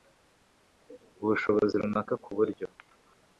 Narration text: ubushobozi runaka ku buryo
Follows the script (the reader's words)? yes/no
yes